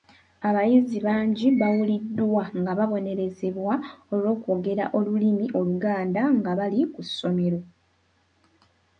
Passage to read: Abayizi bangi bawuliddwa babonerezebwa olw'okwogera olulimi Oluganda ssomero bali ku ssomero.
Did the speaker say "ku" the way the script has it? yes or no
yes